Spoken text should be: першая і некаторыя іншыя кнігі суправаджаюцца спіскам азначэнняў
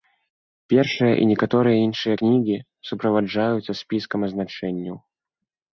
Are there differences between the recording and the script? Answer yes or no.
no